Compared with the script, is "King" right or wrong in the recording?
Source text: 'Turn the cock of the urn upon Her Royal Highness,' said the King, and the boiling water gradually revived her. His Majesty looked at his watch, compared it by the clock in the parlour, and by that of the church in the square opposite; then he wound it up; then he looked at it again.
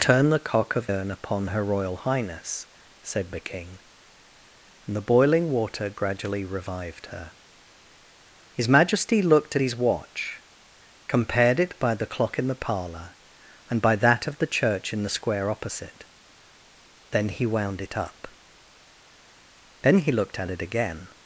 right